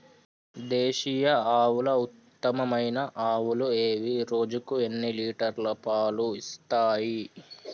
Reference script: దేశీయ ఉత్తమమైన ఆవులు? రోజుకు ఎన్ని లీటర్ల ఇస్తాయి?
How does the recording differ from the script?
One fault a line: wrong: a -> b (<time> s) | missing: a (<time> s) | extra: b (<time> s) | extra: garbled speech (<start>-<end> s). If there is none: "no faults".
extra: ఆవుల (1.6 s)
extra: ఏవి (3.8 s)
extra: పాలు (5.8 s)